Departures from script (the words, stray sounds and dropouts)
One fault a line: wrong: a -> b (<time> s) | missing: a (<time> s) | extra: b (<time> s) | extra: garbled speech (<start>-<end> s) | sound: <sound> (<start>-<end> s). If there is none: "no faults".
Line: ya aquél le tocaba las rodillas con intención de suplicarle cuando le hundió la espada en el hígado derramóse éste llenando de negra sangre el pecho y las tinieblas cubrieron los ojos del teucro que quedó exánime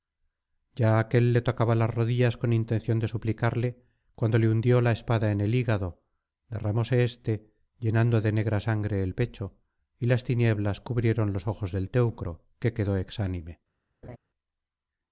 sound: laugh (14.0-14.2 s)